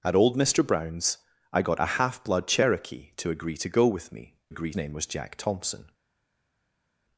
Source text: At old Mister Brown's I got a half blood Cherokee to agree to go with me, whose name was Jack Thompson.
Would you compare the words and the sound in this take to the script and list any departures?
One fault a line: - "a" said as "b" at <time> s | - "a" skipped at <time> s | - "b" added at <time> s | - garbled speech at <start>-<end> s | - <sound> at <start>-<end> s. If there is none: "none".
- "whose" said as "agree" at 4.5 s